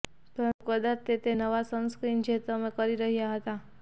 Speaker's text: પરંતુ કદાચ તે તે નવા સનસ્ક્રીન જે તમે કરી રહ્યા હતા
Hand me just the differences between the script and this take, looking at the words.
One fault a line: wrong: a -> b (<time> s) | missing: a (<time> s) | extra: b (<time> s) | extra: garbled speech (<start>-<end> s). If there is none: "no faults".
no faults